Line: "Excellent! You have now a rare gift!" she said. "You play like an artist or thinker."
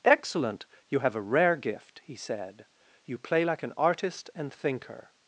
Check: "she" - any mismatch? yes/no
yes